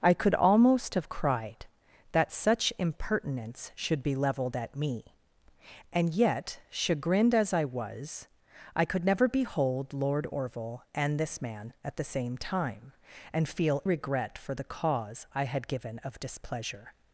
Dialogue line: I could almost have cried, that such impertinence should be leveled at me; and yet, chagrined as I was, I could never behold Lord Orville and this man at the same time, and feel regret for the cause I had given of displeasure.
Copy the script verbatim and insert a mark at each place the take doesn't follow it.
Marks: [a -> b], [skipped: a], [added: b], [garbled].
I could almost have cried, that such impertinence should be leveled at me; and yet, chagrined as I was, I could never behold Lord Orville and this man at the same time, and feel regret for the cause I had given of displeasure.